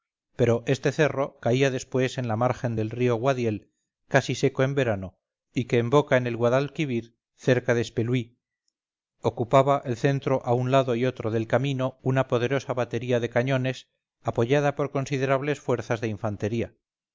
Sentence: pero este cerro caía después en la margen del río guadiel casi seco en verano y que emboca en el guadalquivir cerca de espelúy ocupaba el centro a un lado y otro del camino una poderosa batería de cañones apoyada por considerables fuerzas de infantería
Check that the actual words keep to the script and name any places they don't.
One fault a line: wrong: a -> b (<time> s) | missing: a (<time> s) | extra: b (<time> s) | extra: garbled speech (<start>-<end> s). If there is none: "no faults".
no faults